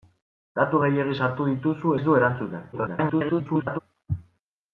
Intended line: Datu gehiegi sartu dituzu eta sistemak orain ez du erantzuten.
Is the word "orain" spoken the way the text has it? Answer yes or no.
no